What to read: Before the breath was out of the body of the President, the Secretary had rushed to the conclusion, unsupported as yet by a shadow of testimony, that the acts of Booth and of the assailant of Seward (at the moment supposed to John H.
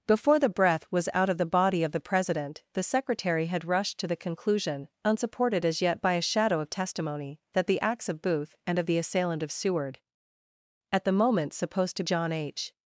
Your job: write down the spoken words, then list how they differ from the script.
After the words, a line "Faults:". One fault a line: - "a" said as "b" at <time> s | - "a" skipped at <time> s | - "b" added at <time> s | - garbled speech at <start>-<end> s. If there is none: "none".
Before the breath was out of the body of the President, the Secretary had rushed to the conclusion, unsupported as yet by a shadow of testimony, that the acts of Booth and of the assailant of Seward (at the moment supposed to John H.
Faults:
none